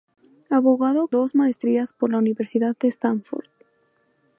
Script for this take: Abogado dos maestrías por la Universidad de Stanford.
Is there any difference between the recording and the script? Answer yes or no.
no